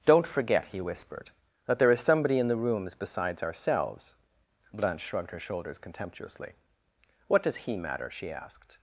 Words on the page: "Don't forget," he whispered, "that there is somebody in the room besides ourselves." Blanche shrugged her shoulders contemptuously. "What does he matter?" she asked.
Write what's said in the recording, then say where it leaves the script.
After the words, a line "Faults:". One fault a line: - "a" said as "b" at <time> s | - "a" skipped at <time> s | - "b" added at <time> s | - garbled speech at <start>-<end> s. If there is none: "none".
"Don't forget," he whispered, "that there is somebody in the rooms besides ourselves." Blanche shrugged her shoulders contemptuously. "What does he matter?" she asked.
Faults:
- "room" said as "rooms" at 2.5 s